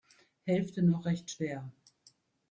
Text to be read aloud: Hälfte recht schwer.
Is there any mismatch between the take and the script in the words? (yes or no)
yes